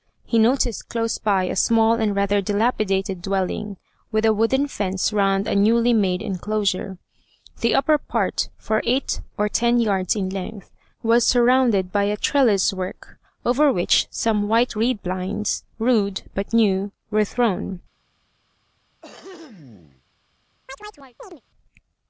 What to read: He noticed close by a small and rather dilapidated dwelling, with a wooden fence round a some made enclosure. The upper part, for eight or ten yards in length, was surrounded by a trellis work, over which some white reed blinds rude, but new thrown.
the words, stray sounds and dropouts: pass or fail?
fail